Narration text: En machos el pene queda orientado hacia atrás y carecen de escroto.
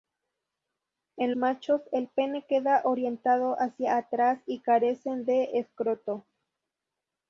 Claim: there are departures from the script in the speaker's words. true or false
false